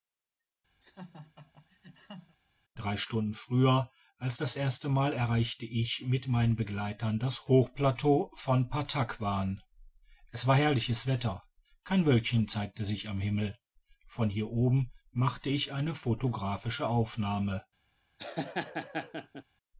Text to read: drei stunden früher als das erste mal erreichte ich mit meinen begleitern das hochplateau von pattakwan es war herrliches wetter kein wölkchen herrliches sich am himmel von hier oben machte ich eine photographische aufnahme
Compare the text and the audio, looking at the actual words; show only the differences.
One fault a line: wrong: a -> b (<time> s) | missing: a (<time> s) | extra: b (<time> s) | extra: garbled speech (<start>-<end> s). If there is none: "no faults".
wrong: herrliches -> zeigte (12.5 s)